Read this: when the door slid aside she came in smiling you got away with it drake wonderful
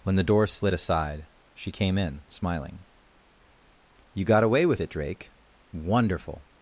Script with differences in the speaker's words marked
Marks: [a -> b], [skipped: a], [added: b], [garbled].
when the door slid aside she came in smiling you got away with it drake wonderful